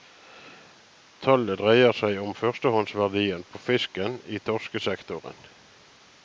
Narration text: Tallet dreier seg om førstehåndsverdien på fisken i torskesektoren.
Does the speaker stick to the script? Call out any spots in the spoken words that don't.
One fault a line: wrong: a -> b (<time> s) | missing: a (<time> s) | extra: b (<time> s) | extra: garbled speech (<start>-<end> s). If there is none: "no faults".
no faults